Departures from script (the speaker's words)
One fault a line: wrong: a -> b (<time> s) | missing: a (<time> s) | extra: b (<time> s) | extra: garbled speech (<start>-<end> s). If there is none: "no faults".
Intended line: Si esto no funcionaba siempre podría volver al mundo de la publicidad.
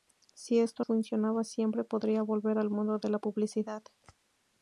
missing: no (0.8 s)